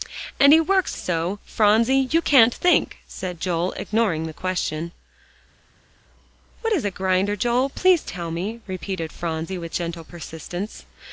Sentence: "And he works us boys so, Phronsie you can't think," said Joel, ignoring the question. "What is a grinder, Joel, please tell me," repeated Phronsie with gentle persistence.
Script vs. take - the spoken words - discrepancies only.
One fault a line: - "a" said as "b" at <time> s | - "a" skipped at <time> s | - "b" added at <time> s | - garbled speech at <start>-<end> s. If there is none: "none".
- "us boys" skipped at 1.0 s